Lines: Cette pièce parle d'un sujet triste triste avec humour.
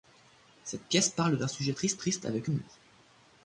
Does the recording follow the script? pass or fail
pass